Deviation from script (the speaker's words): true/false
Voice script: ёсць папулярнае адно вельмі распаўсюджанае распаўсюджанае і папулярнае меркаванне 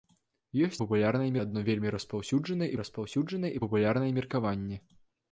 false